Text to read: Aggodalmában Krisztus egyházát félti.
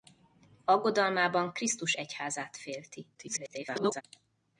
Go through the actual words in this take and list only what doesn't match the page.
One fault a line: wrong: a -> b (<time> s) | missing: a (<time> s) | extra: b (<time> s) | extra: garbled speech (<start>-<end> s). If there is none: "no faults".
extra: garbled speech (3.1-4.0 s)